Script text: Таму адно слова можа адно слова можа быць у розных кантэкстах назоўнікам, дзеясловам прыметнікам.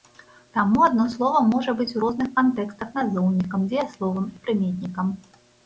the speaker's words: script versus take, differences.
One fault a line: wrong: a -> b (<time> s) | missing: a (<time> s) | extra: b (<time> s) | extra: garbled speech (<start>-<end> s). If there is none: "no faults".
missing: адно слова можа (1.8 s)
extra: і (4.3 s)